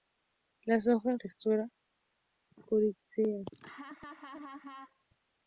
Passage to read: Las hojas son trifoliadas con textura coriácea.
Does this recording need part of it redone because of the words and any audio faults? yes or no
yes